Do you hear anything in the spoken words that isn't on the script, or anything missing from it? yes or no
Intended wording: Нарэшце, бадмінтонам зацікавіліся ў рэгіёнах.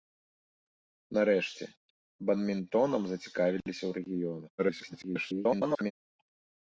yes